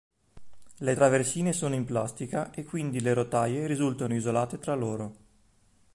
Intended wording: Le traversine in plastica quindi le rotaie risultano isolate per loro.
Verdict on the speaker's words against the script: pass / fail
fail